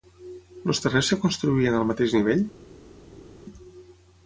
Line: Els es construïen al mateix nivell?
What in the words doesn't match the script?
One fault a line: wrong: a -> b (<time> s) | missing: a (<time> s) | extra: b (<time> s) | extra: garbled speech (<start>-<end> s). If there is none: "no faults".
extra: terrers (0.8 s)